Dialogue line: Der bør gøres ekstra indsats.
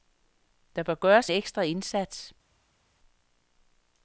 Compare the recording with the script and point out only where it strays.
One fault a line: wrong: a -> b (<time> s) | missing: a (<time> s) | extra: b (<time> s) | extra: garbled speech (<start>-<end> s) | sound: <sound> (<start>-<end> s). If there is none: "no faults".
no faults